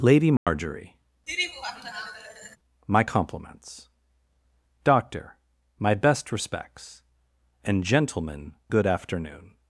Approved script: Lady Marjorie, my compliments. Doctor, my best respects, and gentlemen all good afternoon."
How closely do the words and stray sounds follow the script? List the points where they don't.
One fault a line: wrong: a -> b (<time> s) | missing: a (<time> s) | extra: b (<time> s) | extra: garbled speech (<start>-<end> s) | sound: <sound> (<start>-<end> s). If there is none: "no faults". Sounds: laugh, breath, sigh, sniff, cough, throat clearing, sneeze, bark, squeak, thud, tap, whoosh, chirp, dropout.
sound: dropout (0.4-0.5 s)
sound: laugh (1.3-2.6 s)
missing: all (8.5 s)